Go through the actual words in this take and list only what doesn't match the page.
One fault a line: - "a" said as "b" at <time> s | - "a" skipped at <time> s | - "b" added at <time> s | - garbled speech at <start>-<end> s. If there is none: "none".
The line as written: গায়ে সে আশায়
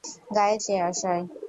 none